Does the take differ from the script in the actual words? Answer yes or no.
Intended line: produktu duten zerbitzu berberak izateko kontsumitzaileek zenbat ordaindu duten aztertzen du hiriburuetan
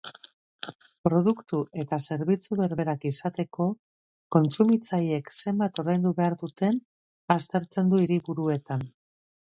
yes